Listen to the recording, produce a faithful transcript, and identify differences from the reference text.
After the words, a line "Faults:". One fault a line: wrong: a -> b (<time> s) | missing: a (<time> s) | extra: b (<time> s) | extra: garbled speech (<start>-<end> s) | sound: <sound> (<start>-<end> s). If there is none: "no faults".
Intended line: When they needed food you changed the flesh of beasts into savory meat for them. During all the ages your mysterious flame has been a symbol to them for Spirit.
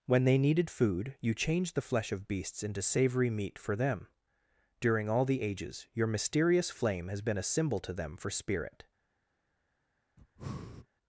When they needed food you changed the flesh of beasts into savory meat for them. During all the ages your mysterious flame has been a symbol to them for Spirit.
Faults:
sound: breath (10.2-10.9 s)